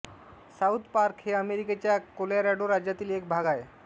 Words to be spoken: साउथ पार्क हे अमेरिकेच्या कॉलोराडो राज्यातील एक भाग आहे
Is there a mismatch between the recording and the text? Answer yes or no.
no